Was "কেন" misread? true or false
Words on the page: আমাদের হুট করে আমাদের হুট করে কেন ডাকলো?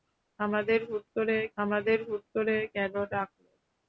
false